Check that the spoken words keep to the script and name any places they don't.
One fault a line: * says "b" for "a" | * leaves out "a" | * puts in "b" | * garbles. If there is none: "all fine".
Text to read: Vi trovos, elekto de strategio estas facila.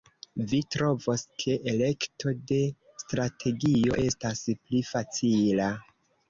* puts in "ke"
* puts in "pli"